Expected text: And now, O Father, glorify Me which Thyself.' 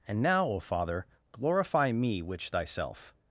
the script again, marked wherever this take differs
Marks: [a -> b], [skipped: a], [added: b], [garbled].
And now, O Father, glorify Me which Thyself.'